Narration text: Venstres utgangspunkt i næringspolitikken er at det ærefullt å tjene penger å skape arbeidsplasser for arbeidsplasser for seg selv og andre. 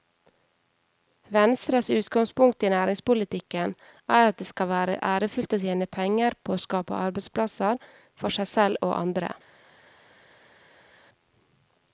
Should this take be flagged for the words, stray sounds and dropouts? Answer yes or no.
yes